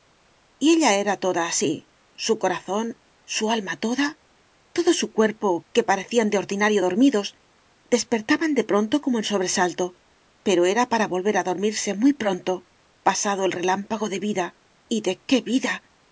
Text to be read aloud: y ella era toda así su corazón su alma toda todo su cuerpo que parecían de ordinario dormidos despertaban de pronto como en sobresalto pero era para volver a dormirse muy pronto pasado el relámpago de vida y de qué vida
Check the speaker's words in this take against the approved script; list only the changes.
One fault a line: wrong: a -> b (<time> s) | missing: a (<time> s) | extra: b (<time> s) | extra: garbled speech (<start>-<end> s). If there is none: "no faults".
no faults